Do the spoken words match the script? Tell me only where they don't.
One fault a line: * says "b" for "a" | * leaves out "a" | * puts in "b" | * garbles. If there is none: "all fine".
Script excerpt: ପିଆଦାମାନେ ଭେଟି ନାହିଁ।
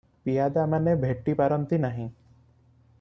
* puts in "ପାରନ୍ତି"